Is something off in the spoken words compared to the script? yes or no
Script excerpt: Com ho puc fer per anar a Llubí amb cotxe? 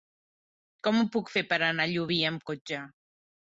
no